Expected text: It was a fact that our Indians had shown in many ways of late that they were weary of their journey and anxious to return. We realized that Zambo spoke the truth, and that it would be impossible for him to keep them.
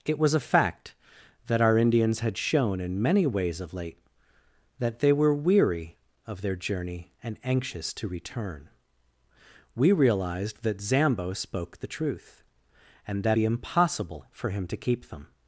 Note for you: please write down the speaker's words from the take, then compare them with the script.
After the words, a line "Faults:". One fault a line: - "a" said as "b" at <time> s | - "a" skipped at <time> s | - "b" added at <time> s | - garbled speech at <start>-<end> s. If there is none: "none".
It was a fact that our Indians had shown in many ways of late that they were weary of their journey and anxious to return. We realized that Zambo spoke the truth, and that be impossible for him to keep them.
Faults:
- "it would" skipped at 13.4 s